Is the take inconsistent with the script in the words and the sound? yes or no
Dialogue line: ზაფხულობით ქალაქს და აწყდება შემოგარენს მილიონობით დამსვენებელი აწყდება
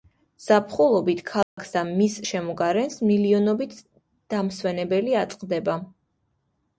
yes